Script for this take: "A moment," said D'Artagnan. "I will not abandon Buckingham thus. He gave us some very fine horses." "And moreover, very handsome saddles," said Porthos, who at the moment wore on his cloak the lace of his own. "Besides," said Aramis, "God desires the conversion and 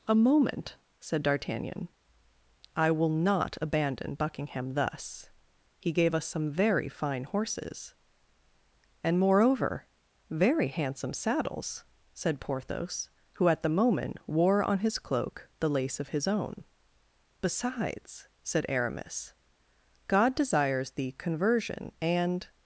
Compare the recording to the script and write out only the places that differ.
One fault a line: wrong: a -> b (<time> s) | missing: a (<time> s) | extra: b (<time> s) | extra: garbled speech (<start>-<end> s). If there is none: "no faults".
no faults